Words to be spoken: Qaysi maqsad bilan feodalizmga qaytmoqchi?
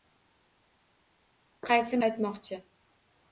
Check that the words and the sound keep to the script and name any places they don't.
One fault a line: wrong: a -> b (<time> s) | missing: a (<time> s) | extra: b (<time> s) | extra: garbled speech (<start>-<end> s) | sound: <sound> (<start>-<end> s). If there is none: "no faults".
missing: maqsad bilan feodalizmga (2.0 s)